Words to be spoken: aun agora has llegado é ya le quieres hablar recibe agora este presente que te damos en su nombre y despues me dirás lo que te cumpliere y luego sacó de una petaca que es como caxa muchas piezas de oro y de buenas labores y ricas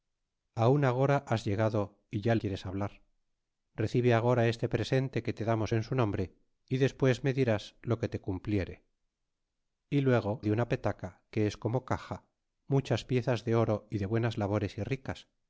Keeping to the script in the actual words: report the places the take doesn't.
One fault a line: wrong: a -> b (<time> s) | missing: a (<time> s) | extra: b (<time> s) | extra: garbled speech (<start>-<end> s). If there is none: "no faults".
missing: le (2.3 s)
missing: sacó (10.3 s)